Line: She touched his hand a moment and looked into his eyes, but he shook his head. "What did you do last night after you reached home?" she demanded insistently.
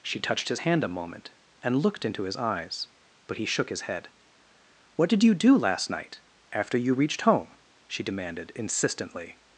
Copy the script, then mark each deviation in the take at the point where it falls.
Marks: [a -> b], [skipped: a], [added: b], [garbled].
She touched his hand a moment and looked into his eyes, but he shook his head. "What did you do last night after you reached home?" she demanded insistently.